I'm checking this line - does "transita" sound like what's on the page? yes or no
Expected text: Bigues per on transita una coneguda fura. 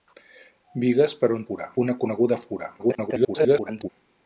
no